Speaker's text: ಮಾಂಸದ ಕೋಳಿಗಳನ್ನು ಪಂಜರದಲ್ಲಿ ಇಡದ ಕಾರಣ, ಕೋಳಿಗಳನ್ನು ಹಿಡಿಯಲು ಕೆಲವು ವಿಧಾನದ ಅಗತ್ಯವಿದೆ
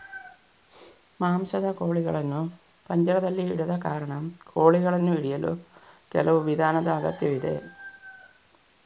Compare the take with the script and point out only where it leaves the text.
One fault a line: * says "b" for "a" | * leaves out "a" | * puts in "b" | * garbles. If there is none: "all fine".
all fine